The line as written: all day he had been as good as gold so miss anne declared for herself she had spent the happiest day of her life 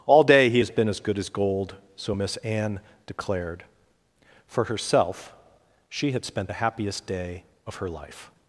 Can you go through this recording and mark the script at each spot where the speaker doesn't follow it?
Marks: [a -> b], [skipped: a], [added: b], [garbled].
all day he [had -> has] been as good as gold so miss anne declared for herself she had spent the happiest day of her life